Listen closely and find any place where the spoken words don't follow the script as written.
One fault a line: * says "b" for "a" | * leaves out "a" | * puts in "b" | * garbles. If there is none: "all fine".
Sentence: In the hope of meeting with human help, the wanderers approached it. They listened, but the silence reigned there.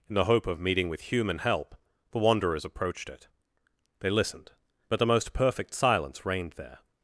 * puts in "most perfect"